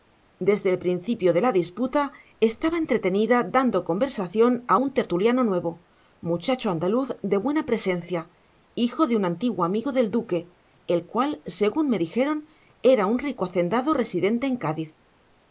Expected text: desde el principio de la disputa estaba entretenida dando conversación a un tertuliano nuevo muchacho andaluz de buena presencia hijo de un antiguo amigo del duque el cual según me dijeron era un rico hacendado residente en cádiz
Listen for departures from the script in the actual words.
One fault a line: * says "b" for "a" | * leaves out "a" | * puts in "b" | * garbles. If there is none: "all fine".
all fine